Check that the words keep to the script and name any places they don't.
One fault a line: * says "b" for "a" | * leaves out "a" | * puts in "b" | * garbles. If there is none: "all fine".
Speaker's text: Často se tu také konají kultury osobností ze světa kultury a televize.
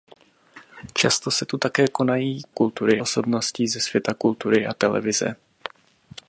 all fine